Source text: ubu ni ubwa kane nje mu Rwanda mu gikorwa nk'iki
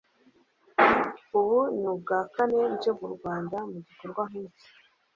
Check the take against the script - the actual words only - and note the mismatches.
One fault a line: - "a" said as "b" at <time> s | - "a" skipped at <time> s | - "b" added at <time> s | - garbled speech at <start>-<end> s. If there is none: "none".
none